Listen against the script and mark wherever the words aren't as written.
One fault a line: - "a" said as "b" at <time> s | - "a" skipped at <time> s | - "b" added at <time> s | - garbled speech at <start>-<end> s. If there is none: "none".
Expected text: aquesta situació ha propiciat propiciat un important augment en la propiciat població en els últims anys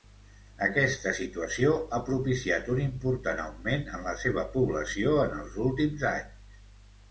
- "propiciat" skipped at 2.7 s
- "propiciat" said as "seva" at 4.2 s